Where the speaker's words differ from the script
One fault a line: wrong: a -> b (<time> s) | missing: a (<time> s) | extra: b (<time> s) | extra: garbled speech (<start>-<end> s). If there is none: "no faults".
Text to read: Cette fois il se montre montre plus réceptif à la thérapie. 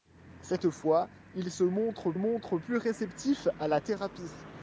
no faults